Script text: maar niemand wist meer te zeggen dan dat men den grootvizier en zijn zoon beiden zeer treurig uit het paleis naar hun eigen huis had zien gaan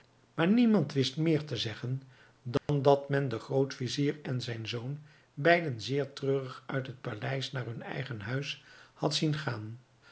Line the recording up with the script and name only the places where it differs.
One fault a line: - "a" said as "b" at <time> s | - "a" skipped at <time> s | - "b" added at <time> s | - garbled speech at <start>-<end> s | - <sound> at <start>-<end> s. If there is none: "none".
- dropout at 2.6-2.7 s